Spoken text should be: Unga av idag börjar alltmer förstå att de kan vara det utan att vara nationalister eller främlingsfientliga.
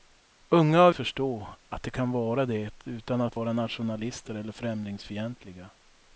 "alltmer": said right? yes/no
no